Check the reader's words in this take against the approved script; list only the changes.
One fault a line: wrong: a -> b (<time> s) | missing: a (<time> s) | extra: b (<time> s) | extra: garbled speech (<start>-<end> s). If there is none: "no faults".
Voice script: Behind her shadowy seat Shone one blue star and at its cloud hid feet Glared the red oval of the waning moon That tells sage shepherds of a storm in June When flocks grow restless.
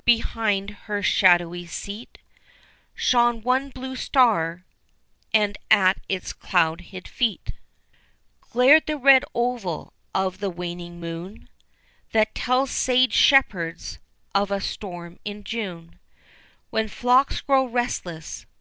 no faults